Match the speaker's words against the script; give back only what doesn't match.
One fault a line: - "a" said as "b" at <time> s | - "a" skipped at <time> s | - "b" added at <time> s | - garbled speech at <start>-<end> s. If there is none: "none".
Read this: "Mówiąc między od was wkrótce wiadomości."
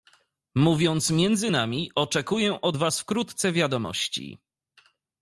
- "nami oczekuję" added at 1.5 s